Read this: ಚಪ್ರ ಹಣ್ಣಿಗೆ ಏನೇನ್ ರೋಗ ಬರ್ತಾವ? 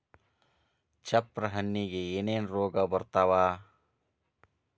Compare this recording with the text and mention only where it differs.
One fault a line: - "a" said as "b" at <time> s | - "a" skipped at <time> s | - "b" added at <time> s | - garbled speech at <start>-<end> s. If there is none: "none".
none